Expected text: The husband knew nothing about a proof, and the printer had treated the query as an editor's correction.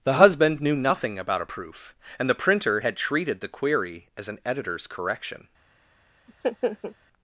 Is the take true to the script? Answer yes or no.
yes